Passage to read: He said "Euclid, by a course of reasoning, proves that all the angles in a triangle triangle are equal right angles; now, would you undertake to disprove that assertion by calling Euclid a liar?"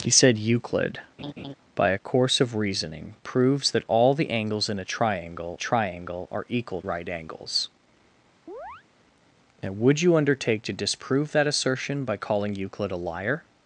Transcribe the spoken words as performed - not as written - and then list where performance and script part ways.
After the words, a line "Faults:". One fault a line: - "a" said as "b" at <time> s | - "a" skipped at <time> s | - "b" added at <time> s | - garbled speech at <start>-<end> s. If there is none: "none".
He said "Euclid, by a course of reasoning, proves that all the angles in a triangle triangle are equal right angles; now, would you undertake to disprove that assertion by calling Euclid a liar?"
Faults:
none